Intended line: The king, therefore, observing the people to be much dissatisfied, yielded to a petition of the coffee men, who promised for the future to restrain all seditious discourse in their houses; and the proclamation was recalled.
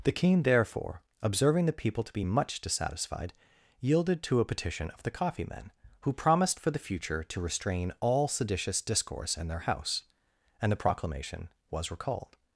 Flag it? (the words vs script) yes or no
yes